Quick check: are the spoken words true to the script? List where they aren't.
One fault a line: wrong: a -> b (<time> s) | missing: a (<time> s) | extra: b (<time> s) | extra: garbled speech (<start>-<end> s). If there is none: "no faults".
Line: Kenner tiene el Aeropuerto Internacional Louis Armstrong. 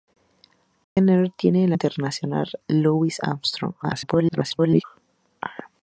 missing: Aeropuerto (1.7 s)
extra: garbled speech (3.8-4.8 s)